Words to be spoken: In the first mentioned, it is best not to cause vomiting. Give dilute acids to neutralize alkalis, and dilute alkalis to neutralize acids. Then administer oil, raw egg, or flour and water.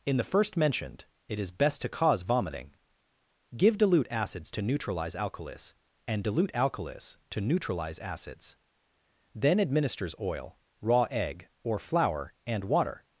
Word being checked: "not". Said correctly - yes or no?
no